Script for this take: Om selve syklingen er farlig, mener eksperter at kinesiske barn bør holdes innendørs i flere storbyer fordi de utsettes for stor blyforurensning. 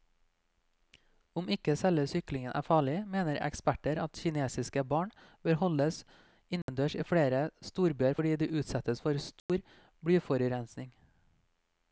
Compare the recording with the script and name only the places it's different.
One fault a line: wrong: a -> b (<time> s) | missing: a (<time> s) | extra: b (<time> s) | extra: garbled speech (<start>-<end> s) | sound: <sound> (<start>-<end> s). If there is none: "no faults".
extra: ikke (1.6 s)
sound: dropout (6.6-6.7 s)
sound: dropout (9.4-9.5 s)